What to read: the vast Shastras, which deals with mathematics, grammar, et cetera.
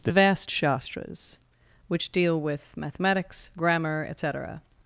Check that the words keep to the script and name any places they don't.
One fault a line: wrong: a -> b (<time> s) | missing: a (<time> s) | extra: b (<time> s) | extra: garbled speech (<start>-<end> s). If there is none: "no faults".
wrong: deals -> deal (2.1 s)